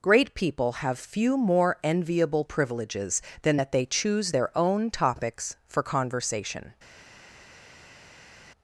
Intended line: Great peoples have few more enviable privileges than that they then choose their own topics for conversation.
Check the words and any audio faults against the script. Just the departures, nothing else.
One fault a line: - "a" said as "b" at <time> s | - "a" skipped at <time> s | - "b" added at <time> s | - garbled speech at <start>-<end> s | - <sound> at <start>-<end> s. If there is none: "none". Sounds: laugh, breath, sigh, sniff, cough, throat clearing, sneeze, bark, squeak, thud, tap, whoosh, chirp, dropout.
- "peoples" said as "people" at 0.3 s
- "then" skipped at 3.9 s